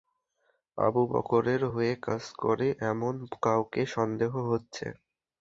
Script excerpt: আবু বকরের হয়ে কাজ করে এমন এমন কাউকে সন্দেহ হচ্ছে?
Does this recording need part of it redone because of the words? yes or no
yes